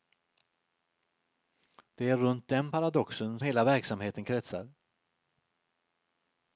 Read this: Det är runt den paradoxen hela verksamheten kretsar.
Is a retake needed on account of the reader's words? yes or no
no